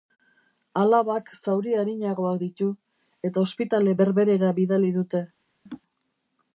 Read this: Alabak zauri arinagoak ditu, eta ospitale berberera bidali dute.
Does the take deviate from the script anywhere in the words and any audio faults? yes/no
yes